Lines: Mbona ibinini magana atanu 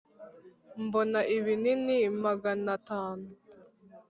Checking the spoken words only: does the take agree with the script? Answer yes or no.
yes